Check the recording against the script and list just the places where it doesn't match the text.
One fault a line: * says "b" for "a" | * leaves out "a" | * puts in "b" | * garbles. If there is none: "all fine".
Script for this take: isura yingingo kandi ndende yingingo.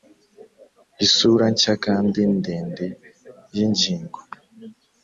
* says "nshya" for "yingingo"